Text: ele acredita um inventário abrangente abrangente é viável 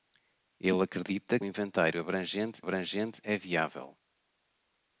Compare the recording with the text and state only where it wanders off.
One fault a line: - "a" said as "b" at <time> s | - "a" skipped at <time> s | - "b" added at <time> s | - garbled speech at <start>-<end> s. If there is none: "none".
none